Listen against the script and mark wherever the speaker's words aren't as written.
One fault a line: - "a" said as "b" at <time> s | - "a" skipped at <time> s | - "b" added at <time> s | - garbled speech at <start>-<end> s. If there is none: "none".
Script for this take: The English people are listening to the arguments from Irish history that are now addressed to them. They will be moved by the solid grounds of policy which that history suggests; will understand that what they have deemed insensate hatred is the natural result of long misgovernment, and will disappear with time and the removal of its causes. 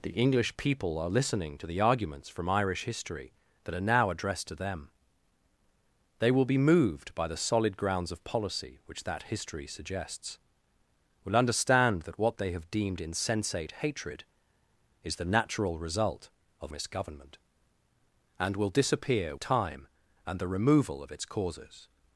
- "long" skipped at 16.7 s
- "with" skipped at 19.4 s